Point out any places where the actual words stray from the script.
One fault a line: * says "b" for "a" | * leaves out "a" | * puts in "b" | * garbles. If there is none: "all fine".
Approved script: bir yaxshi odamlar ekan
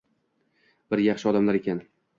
all fine